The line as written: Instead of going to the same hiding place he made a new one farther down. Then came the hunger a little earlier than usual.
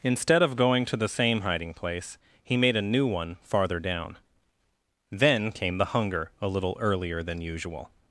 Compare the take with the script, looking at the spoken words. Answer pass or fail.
pass